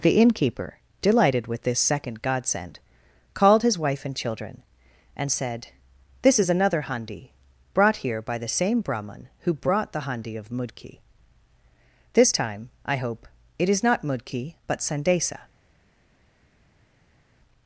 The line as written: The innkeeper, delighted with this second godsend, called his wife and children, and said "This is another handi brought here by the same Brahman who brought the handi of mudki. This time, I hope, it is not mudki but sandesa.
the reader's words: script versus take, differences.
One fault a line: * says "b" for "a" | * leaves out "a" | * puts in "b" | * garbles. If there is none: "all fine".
all fine